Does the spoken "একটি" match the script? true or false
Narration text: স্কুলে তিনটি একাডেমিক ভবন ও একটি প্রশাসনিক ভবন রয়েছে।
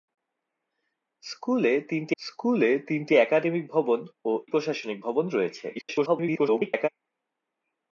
false